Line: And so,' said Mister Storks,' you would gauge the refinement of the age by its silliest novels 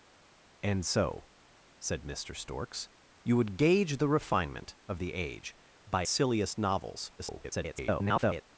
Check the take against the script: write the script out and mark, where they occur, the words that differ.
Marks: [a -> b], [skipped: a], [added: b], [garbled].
And so,' said Mister Storks,' you would gauge the refinement of the age by [skipped: its] silliest novels [garbled]